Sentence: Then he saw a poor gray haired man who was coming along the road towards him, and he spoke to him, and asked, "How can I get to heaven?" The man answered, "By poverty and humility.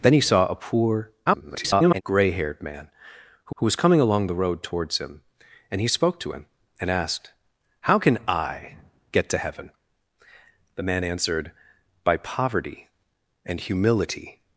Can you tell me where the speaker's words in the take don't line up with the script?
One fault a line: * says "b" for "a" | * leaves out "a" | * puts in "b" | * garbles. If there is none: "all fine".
* garbles
* puts in "who"